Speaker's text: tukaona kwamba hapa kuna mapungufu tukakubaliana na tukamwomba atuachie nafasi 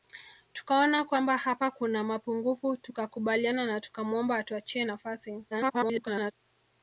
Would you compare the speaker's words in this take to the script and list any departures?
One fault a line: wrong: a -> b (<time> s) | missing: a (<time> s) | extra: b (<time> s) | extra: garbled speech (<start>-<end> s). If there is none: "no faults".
extra: garbled speech (5.5-6.3 s)